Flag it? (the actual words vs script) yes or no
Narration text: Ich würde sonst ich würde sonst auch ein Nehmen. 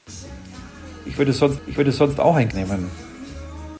no